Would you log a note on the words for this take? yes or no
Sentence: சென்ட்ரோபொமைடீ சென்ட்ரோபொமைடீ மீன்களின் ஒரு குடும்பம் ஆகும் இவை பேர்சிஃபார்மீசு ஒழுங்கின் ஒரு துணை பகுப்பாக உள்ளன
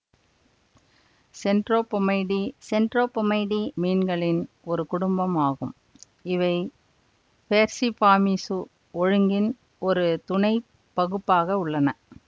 no